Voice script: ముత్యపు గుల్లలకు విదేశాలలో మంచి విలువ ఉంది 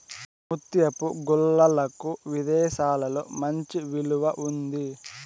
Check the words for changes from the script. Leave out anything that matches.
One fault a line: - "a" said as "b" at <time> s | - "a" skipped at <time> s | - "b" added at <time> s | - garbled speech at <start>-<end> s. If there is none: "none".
none